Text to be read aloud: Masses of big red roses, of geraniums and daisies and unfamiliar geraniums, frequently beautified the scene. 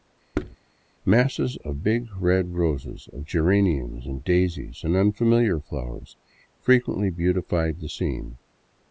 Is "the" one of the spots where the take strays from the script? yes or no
no